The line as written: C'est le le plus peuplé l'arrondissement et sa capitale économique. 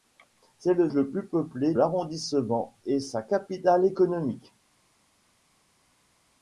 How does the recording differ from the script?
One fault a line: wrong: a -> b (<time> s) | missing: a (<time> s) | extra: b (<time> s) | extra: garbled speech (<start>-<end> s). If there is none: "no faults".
no faults